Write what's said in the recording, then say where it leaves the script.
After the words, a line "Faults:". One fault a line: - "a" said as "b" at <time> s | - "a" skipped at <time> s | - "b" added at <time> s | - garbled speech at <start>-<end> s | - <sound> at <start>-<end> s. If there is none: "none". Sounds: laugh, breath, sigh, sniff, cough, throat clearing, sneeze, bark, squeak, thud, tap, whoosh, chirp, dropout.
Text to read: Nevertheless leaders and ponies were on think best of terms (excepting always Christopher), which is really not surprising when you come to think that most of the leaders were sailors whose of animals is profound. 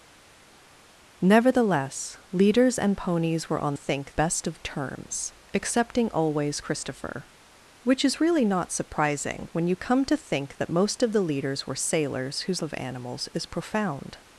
Nevertheless leaders and ponies were on think best of terms (excepting always Christopher), which is really not surprising when you come to think that most of the leaders were sailors whose of animals is profound.
Faults:
none